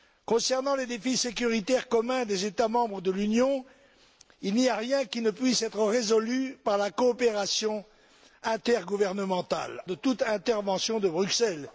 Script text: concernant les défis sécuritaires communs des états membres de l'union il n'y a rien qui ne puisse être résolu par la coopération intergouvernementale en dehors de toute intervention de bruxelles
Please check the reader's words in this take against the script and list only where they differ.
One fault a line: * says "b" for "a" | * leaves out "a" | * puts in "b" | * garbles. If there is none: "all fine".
* leaves out "en dehors"